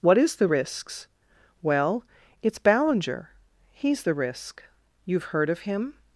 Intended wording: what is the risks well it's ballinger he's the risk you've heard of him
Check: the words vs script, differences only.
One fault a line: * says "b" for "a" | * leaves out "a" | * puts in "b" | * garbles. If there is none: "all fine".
all fine